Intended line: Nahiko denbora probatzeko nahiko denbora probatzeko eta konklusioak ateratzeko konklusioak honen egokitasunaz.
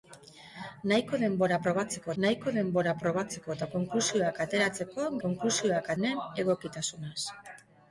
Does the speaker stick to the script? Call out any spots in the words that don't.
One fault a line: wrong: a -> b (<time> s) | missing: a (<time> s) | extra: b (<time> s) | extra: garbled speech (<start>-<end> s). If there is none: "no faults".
no faults